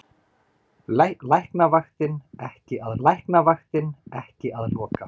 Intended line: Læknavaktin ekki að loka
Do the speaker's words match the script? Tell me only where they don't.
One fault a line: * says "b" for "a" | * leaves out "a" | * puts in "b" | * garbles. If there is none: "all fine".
* puts in "læknavaktin ekki að"